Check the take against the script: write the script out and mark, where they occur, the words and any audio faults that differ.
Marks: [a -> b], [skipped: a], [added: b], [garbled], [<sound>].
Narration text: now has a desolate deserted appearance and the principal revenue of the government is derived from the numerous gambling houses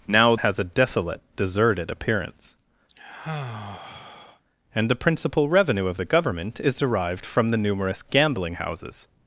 now has a desolate deserted appearance [sigh] and the principal revenue of the government is derived from the numerous gambling houses